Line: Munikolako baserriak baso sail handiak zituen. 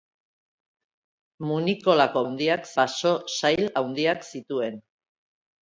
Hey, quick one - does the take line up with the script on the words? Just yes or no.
no